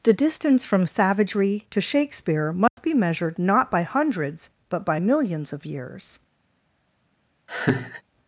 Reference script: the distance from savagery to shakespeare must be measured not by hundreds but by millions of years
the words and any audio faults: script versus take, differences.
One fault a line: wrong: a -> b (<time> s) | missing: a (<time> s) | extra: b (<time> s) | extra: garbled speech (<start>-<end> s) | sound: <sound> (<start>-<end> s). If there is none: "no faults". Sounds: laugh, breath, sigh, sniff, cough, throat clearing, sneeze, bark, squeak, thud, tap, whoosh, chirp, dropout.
sound: dropout (2.7-2.8 s)
sound: laugh (7.5-8.0 s)